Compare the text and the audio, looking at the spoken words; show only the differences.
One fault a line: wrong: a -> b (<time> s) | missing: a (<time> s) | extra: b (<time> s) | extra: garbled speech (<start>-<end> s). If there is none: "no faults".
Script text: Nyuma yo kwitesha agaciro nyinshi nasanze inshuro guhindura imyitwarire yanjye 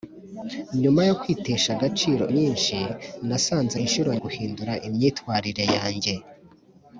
no faults